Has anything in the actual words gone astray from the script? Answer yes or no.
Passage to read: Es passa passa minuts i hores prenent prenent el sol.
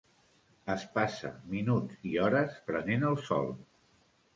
yes